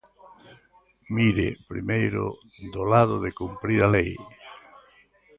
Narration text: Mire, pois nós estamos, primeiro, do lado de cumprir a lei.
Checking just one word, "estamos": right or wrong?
wrong